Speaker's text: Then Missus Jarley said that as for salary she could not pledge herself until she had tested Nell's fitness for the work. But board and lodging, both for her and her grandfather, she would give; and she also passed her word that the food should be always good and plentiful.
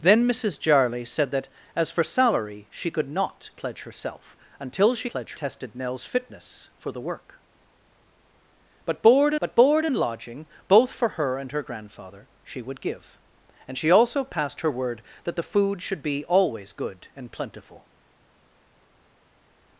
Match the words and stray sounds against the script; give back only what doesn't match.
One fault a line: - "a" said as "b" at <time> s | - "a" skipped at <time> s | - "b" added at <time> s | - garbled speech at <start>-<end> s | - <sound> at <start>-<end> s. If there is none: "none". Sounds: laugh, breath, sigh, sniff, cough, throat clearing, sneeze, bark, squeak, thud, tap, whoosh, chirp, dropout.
- "had" said as "pledge" at 5.1 s
- "but board" added at 9.4 s